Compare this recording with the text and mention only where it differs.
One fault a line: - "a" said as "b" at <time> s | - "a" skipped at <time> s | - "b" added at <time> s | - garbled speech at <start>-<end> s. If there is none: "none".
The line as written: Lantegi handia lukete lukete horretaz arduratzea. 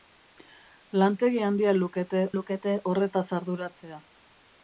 none